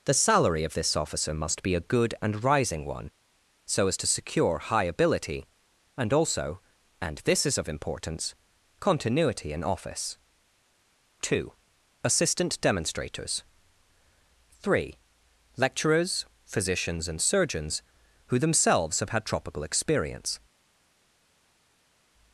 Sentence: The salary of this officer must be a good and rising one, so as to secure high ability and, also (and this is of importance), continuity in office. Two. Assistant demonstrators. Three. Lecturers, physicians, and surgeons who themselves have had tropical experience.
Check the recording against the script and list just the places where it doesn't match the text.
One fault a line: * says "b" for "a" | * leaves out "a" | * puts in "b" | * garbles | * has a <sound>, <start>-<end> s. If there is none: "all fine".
all fine